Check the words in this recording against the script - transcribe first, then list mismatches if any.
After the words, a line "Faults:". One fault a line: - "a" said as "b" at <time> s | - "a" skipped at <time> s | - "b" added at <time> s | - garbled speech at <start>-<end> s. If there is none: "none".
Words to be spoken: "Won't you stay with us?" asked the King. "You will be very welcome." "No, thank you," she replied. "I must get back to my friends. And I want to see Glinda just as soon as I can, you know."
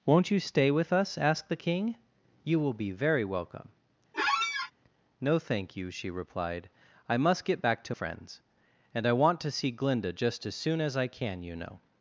"Won't you stay with us?" asked the King. "You will be very welcome." "No, thank you," she replied. "I must get back to friends. And I want to see Glinda just as soon as I can, you know."
Faults:
- "my" skipped at 7.9 s